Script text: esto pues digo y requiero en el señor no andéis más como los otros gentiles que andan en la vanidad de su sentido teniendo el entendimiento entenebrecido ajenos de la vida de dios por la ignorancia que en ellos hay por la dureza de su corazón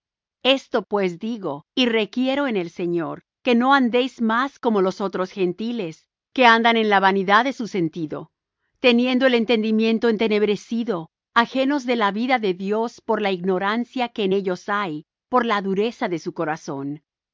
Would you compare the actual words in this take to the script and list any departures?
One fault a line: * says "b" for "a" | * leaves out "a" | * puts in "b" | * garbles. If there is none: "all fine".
* puts in "que"